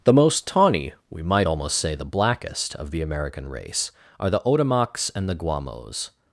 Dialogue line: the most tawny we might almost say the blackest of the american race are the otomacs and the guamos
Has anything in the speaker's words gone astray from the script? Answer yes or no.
no